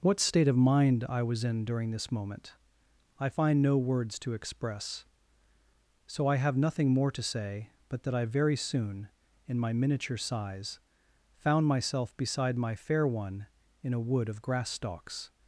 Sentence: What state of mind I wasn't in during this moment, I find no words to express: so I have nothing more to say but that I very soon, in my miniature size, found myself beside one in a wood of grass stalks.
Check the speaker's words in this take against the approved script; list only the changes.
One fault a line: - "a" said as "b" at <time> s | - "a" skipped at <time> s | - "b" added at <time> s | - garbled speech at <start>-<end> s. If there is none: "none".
- "wasn't" said as "was" at 1.2 s
- "my fair" added at 12.6 s